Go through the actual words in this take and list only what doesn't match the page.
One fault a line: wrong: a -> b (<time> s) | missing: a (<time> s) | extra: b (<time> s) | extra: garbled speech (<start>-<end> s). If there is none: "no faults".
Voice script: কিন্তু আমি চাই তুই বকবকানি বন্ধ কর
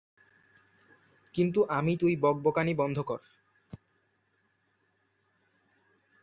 missing: চাই (1.9 s)